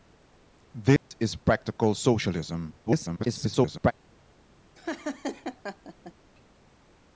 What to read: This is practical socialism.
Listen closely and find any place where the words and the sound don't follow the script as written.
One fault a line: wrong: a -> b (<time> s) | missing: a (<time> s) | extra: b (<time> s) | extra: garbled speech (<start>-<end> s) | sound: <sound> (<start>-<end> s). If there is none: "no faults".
sound: dropout (1.0-1.1 s)
extra: garbled speech (2.9-3.9 s)
sound: laugh (4.7-6.1 s)